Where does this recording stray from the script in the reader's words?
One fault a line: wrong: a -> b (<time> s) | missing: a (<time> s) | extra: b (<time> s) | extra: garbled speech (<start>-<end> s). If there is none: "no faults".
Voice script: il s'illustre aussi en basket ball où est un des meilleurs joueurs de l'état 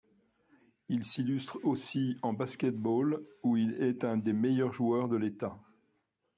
extra: il (3.5 s)